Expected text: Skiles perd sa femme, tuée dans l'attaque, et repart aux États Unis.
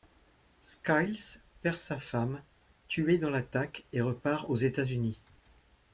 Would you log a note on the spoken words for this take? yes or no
no